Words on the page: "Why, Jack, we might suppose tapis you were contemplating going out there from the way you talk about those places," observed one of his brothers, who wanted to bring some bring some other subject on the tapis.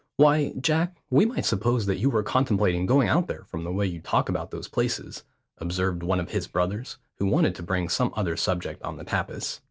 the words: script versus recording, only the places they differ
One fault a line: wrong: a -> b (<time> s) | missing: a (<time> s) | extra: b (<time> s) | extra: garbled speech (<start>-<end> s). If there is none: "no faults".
wrong: tapis -> that (1.8 s)
missing: bring some (8.1 s)